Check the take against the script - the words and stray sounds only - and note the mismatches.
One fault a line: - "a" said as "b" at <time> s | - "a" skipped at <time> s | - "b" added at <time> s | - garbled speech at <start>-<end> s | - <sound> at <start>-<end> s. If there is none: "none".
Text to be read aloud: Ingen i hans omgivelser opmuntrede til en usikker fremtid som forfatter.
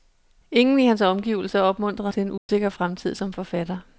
- dropout at 2.4-2.5 s